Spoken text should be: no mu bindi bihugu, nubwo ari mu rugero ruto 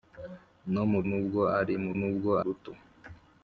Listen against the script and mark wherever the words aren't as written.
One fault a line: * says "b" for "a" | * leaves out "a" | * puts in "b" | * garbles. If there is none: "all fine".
* leaves out "bindi bihugu"
* says "nubwo" for "rugero"